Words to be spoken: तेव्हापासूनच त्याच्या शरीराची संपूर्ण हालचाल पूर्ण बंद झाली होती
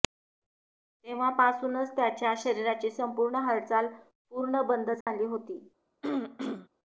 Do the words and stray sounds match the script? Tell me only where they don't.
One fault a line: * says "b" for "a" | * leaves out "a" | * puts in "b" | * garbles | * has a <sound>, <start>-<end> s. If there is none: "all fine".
* has a dropout, 5.0-5.1 s
* has a throat clearing, 6.0-6.7 s